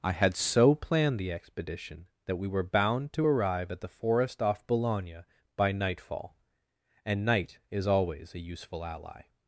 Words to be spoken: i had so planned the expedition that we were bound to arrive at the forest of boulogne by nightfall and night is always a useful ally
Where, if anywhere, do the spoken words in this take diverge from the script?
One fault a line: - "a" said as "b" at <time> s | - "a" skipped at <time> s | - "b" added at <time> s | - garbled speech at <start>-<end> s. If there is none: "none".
- "of" said as "off" at 4.4 s